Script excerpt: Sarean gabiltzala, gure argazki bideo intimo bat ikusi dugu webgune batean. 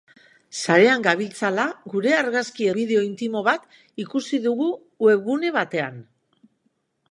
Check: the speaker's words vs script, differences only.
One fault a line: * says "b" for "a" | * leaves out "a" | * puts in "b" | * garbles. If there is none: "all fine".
all fine